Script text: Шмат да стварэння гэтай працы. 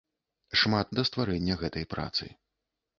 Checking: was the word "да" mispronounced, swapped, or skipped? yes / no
no